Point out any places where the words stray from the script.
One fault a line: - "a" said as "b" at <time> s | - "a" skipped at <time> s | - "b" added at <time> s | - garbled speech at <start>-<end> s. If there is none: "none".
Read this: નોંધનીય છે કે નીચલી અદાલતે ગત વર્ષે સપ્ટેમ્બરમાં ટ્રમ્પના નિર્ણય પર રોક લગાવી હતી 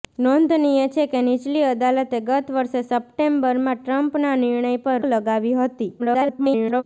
- "રોક" skipped at 5.0 s
- garbled speech at 6.0-6.8 s